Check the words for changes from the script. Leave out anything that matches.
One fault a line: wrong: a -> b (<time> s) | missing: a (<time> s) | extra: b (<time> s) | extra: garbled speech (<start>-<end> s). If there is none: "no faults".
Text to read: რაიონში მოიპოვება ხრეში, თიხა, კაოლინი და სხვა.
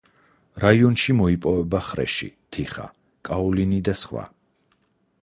no faults